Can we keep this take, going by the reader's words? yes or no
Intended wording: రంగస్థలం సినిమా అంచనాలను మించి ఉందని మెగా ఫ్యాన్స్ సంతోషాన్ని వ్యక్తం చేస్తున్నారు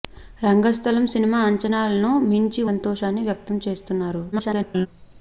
no